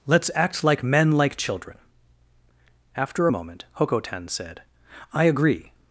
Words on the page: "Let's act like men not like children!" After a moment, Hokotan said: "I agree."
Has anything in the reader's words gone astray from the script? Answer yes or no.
yes